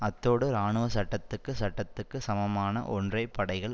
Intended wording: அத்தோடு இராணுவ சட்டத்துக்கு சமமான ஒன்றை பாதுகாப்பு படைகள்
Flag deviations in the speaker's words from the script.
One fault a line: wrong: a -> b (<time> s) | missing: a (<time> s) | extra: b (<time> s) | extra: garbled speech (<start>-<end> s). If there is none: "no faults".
extra: சட்டத்துக்கு (1.5 s)
missing: பாதுகாப்பு (3.2 s)